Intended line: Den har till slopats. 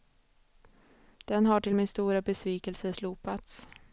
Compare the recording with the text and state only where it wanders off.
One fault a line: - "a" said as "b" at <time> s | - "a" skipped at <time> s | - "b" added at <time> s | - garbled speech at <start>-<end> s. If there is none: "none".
- "min stora besvikelse" added at 1.7 s